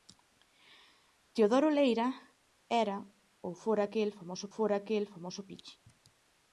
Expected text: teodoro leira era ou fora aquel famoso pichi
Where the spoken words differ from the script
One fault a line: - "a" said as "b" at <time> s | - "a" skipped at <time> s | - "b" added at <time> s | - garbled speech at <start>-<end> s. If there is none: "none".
- "fora aquel famoso" added at 4.6 s